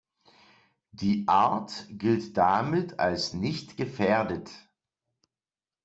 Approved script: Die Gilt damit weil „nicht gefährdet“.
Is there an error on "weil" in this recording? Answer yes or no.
yes